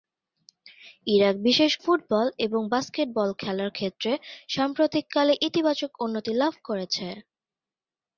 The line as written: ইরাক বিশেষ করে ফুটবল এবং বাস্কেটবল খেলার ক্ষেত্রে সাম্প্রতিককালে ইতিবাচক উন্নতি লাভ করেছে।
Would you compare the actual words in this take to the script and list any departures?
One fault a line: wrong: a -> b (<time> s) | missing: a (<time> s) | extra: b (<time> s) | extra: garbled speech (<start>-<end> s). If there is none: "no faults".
missing: করে (1.7 s)